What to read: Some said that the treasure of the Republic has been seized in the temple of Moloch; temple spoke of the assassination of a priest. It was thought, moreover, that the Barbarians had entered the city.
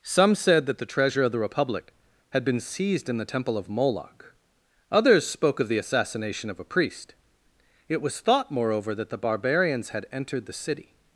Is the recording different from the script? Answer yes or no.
yes